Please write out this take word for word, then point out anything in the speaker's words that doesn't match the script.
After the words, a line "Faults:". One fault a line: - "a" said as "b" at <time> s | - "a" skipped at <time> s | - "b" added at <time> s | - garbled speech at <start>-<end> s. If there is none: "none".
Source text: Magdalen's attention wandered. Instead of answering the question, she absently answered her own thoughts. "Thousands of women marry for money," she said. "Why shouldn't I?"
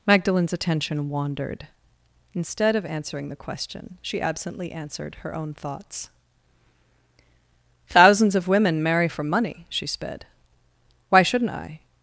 Magdalen's attention wandered. Instead of answering the question, she absently answered her own thoughts. "Thousands of women marry for money," she sped. "Why shouldn't I?"
Faults:
- "said" said as "sped" at 9.9 s